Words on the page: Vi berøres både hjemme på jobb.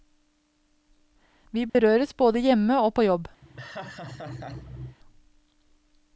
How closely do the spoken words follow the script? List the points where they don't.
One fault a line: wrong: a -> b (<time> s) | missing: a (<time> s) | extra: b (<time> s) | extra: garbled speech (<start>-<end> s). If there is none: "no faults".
extra: og (2.8 s)